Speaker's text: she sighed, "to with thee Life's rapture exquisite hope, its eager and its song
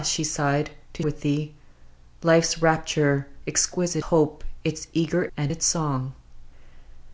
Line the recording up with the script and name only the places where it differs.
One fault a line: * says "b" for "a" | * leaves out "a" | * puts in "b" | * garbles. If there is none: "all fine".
all fine